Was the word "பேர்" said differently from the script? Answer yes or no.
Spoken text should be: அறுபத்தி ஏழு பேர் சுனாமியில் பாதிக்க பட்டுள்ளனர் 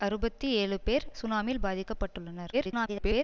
no